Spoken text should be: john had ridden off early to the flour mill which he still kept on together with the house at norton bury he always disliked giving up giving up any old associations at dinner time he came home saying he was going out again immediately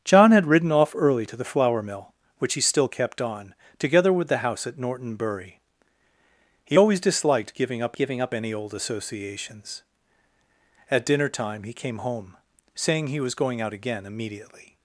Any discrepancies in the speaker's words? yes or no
no